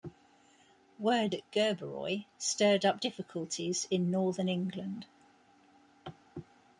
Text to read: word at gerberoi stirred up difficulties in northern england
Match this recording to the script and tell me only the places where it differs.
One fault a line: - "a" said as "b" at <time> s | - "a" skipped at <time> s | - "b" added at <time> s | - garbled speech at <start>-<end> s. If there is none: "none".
none